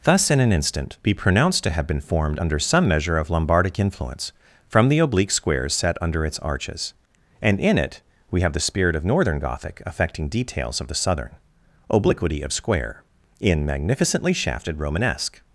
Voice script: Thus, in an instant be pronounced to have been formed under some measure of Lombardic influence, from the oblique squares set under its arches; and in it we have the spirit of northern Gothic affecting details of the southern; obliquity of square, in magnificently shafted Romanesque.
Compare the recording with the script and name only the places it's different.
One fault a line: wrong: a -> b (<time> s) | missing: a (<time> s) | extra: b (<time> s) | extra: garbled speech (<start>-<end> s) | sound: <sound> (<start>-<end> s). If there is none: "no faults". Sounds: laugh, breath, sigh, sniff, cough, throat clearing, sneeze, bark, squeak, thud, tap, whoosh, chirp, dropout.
no faults